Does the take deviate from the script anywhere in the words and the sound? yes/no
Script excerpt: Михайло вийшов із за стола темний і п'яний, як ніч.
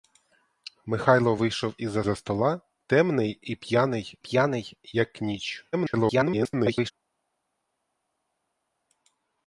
yes